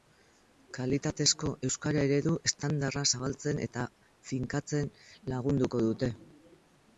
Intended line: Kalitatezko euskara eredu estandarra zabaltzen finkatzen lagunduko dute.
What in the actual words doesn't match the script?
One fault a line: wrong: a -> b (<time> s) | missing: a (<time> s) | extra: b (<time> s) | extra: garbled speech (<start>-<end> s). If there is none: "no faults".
extra: eta (3.7 s)